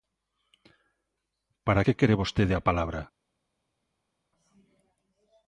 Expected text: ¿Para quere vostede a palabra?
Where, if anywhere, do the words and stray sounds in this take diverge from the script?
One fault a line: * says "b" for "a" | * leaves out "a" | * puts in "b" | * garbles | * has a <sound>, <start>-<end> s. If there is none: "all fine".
* puts in "que"